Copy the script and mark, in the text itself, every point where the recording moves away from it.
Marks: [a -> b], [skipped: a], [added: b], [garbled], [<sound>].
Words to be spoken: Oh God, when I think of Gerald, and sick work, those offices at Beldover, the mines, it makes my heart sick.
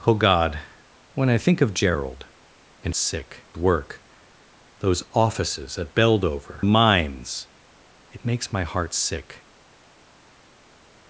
Oh God, when I think of Gerald, and sick work, those offices at Beldover, the mines, it makes my heart sick.